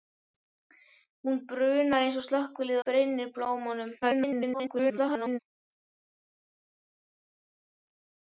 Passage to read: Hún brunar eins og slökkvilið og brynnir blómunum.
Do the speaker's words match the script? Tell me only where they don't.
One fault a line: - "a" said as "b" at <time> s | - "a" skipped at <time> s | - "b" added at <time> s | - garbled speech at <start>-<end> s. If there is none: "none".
- "og" skipped at 2.8 s
- garbled speech at 4.0-5.4 s